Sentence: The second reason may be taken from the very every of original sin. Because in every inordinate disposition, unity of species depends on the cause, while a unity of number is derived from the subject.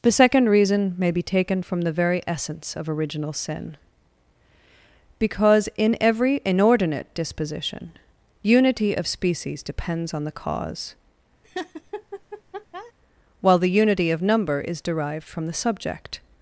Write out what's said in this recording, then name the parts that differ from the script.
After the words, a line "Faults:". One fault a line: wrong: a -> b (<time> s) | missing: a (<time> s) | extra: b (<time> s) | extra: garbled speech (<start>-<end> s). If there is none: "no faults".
The second reason may be taken from the very essence of original sin. Because in every inordinate disposition, unity of species depends on the cause, while the unity of number is derived from the subject.
Faults:
wrong: every -> essence (2.2 s)
wrong: a -> the (13.6 s)